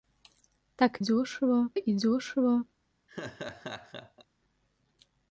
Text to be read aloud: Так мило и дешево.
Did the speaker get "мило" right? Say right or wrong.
wrong